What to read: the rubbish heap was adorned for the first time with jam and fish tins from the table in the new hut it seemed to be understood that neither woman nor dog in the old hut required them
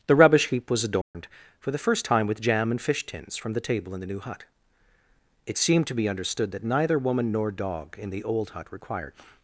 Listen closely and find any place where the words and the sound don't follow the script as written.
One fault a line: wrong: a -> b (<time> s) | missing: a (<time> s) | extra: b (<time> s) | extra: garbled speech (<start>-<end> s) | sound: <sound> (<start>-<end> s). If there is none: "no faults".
sound: dropout (1.0-1.1 s)
missing: them (9.1 s)